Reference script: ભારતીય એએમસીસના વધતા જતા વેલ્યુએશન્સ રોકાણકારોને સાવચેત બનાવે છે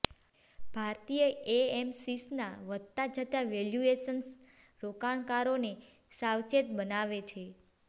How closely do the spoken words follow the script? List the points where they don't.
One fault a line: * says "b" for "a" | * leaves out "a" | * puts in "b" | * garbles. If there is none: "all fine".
all fine